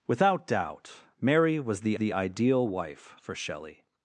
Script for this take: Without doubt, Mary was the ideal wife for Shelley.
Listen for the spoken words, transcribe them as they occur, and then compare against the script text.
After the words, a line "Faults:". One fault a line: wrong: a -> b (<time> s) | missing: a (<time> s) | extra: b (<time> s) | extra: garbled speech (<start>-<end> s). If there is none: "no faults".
Without doubt, Mary was the the ideal wife for Shelley.
Faults:
extra: the (2.0 s)